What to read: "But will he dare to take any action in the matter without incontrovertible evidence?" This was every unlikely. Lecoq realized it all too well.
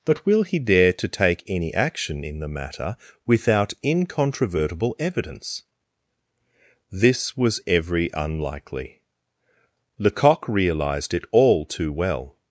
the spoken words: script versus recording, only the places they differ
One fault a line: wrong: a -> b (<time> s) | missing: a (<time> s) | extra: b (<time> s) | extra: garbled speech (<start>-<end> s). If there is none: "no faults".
no faults